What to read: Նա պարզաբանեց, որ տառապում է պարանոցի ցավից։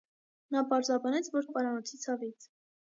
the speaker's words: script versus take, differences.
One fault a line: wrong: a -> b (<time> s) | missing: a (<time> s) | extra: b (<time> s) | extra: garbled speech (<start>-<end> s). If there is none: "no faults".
missing: տառապում (1.5 s)